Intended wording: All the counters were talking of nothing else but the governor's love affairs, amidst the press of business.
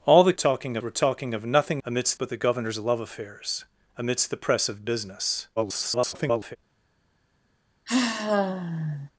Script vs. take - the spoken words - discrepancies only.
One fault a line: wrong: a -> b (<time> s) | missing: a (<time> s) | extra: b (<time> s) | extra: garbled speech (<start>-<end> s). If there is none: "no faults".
wrong: counters -> talking (0.3 s)
wrong: else -> amidst (1.8 s)
extra: garbled speech (5.6-6.6 s)